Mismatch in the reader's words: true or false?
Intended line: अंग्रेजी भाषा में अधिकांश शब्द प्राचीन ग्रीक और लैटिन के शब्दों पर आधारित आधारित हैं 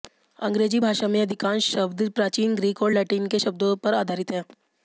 true